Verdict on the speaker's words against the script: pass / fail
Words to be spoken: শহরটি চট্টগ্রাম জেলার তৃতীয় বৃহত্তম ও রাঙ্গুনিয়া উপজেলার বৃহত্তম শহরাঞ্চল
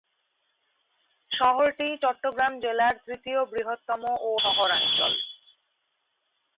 fail